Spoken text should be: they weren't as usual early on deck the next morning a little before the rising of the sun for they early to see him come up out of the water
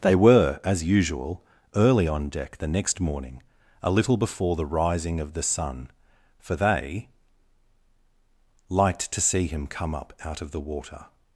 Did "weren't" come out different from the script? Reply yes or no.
yes